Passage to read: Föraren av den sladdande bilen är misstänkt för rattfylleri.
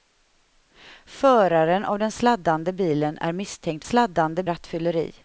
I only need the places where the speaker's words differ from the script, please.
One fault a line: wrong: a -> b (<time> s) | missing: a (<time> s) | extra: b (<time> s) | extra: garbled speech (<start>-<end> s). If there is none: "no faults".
wrong: för -> sladdande (3.8 s)